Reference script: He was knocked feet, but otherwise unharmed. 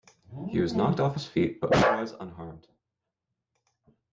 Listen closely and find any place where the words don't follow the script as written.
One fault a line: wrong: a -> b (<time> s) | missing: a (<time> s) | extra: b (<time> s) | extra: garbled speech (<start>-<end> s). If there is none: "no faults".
extra: off his (1.0 s)